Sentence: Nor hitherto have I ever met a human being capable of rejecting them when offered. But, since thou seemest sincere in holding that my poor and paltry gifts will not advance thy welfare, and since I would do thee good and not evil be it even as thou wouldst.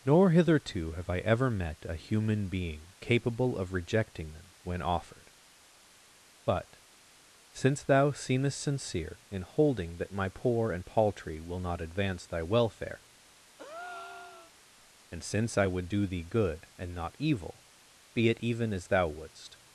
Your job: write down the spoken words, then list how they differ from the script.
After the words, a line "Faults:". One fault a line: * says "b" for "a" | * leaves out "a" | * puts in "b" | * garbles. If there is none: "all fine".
Nor hitherto have I ever met a human being capable of rejecting them when offered. But, since thou seemest sincere in holding that my poor and paltry will not advance thy welfare, and since I would do thee good and not evil be it even as thou wouldst.
Faults:
* leaves out "gifts"